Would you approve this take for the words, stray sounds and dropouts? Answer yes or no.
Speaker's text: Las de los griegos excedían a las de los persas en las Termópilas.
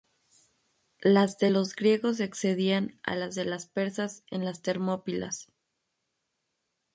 yes